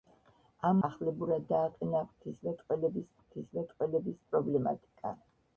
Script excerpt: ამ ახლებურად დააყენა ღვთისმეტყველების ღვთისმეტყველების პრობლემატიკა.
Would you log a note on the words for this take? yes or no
no